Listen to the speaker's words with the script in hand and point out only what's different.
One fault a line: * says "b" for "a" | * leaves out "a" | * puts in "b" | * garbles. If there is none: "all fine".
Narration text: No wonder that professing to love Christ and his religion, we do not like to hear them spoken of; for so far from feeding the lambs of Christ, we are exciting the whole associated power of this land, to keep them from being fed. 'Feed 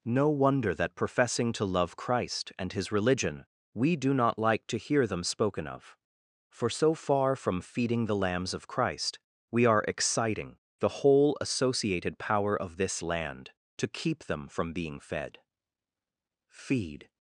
all fine